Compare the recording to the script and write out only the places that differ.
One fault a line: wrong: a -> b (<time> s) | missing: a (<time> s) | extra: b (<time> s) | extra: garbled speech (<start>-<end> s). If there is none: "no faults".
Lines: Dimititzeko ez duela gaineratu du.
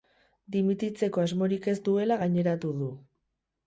extra: asmorik (1.2 s)